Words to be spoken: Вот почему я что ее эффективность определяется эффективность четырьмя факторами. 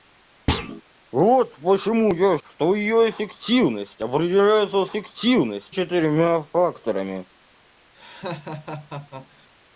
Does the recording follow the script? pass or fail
pass